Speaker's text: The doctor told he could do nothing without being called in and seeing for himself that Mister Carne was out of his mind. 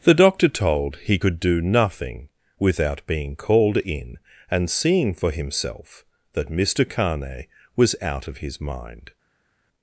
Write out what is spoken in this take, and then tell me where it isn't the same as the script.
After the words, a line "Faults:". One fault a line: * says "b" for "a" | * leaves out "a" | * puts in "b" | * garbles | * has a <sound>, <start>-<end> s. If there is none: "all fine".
The doctor told he could do nothing without being called in and seeing for himself that Mister Carne was out of his mind.
Faults:
all fine